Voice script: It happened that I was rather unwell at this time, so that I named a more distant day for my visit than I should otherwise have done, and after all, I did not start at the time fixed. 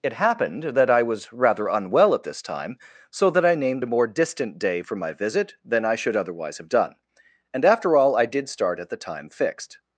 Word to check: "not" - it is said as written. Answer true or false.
false